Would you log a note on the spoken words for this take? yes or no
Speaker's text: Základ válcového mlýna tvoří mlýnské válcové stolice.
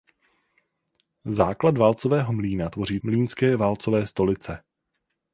no